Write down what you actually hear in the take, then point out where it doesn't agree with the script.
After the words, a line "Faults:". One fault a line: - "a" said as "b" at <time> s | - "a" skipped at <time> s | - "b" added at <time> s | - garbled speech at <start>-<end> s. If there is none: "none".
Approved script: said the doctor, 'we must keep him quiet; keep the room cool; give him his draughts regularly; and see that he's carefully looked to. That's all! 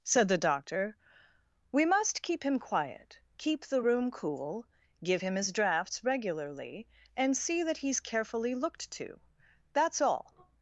said the doctor, 'we must keep him quiet; keep the room cool; give him his draughts regularly; and see that he's carefully looked to. That's all!
Faults:
none